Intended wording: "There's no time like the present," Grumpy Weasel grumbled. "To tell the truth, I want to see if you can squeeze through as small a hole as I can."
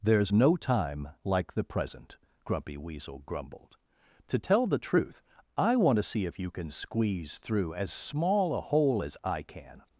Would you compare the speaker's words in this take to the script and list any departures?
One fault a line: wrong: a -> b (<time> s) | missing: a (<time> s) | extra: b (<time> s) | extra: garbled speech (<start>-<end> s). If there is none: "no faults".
no faults